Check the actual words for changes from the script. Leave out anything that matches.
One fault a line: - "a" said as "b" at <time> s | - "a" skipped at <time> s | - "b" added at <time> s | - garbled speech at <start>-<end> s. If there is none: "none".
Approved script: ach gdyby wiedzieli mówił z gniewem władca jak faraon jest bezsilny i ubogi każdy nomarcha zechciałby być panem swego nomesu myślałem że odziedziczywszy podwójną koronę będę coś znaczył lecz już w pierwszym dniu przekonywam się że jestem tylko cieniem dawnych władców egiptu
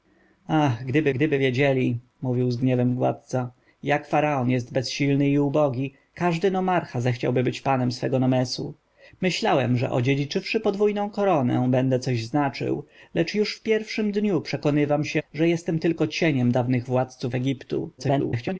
- "gdyby" added at 1.1 s
- garbled speech at 18.0-18.6 s